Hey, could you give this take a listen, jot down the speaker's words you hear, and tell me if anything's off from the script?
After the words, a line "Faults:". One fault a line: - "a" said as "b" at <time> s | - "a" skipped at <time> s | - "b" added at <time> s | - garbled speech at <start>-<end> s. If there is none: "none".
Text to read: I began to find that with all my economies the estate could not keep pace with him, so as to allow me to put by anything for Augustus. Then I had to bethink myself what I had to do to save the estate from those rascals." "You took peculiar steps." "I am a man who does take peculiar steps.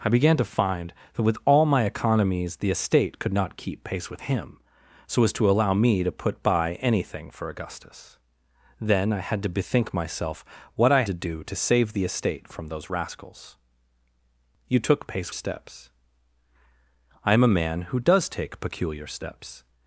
I began to find that with all my economies the estate could not keep pace with him, so as to allow me to put by anything for Augustus. Then I had to bethink myself what I to do to save the estate from those rascals." "You took pace steps." "I am a man who does take peculiar steps.
Faults:
- "had" skipped at 11.0 s
- "peculiar" said as "pace" at 15.1 s